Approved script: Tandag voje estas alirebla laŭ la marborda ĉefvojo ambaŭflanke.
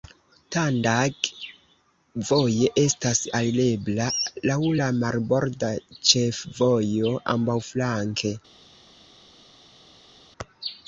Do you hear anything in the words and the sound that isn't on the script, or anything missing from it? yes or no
no